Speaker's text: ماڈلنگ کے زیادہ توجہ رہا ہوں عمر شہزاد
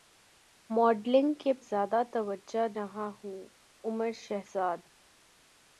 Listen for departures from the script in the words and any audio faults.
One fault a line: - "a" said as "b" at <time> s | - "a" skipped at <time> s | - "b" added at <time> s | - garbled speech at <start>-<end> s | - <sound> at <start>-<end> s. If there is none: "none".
none